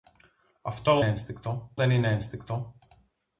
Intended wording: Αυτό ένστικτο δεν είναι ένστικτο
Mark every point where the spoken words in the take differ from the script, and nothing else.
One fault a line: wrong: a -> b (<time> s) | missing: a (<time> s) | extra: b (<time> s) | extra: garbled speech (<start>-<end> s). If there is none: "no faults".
no faults